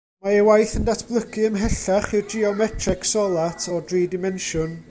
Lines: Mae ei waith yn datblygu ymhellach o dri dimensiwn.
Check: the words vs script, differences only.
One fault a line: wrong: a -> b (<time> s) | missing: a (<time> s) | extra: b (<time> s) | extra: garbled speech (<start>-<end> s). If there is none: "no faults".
extra: i'r geometreg solat (2.2 s)